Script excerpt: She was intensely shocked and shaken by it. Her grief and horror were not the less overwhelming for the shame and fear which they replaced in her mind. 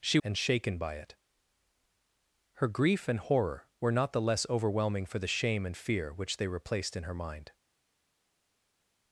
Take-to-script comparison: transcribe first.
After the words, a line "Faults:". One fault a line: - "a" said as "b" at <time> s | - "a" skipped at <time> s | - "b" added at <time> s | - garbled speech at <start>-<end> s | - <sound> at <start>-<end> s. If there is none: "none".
She and shaken by it. Her grief and horror were not the less overwhelming for the shame and fear which they replaced in her mind.
Faults:
- "was intensely shocked" skipped at 0.2 s